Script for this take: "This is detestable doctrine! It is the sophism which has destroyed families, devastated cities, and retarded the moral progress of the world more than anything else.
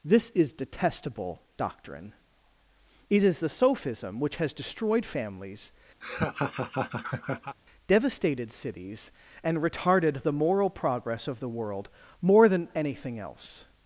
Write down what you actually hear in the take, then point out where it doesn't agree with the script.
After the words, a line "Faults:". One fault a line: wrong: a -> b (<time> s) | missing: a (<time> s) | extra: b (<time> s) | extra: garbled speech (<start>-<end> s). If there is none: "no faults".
"This is detestable doctrine! It is the sophism which has destroyed families, devastated cities, and retarded the moral progress of the world more than anything else.
Faults:
no faults